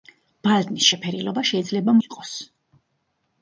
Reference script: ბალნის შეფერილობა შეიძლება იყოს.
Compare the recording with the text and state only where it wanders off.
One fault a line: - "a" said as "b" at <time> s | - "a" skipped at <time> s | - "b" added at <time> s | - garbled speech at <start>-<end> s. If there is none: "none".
none